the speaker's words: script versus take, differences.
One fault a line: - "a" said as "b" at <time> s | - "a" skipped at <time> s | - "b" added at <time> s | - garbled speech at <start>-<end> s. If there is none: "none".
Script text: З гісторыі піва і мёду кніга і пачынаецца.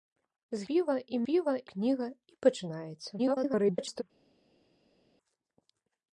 - "гісторыі" skipped at 0.7 s
- "мёду" said as "піва" at 1.3 s
- garbled speech at 3.2-4.0 s